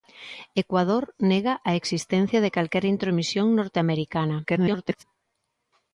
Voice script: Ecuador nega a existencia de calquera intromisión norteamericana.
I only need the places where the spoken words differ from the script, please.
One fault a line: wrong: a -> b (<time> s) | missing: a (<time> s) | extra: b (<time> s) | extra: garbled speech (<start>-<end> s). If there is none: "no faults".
extra: garbled speech (4.4-5.0 s)